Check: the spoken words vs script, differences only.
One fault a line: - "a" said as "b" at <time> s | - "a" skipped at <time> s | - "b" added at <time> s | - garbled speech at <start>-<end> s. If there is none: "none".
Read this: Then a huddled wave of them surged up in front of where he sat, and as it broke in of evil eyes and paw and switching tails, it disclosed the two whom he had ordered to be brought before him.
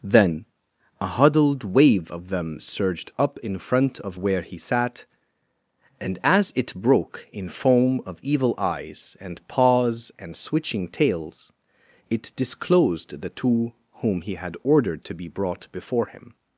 - "foam" added at 7.5 s
- "paw" said as "paws" at 9.5 s